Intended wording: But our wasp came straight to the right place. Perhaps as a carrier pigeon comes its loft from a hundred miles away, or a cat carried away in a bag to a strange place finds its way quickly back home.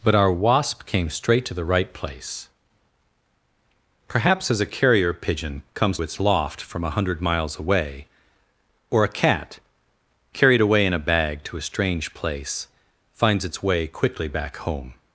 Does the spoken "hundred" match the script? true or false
true